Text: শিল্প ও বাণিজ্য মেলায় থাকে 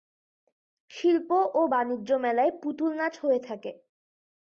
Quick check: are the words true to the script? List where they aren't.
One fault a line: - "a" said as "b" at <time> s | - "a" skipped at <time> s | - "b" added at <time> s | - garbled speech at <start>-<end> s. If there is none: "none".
- "পুতুল নাচ হয়ে" added at 2.6 s